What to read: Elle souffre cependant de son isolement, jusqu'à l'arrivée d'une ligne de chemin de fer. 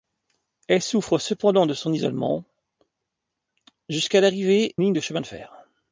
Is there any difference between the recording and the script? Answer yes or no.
yes